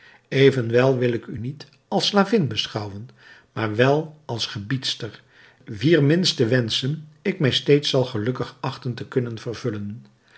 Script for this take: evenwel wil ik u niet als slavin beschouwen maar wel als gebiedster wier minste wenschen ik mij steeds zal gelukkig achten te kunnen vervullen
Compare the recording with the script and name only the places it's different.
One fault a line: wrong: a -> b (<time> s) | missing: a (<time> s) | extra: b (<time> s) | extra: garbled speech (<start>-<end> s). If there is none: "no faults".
no faults